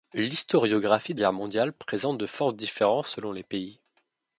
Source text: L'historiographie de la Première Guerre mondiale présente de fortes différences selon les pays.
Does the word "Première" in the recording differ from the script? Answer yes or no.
yes